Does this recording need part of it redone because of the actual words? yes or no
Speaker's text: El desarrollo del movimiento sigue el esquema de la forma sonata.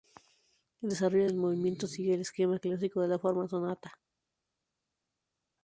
yes